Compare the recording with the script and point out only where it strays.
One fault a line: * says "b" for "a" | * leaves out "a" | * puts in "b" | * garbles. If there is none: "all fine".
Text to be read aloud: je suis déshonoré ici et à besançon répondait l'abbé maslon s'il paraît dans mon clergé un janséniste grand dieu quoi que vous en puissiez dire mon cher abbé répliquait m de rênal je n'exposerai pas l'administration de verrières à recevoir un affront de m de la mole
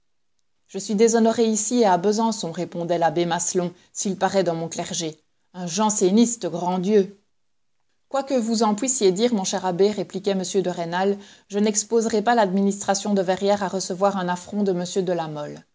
all fine